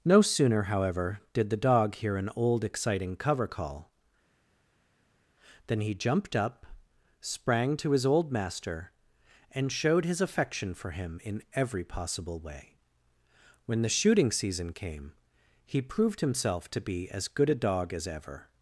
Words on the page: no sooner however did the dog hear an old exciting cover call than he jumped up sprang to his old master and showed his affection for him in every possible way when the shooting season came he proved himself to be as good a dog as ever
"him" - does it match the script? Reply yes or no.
yes